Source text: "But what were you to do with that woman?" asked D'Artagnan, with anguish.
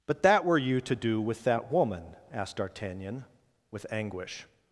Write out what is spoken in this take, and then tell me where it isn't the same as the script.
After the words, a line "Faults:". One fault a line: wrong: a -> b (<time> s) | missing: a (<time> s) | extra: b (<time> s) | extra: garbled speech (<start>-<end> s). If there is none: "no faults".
"But that were you to do with that woman?" asked D'Artagnan, with anguish.
Faults:
wrong: what -> that (0.2 s)